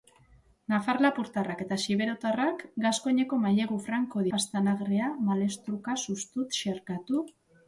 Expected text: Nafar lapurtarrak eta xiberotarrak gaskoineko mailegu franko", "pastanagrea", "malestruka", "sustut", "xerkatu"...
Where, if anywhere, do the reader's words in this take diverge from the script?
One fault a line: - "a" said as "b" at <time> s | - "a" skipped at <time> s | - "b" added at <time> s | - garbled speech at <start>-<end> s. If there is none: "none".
none